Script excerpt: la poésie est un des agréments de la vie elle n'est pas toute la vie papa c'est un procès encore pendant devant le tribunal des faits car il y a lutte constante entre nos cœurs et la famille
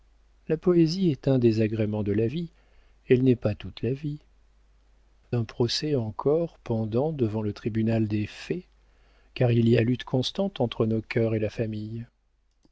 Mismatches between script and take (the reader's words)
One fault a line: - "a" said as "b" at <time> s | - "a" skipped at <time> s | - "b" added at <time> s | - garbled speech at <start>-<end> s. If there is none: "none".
- "papa c'est" skipped at 4.2 s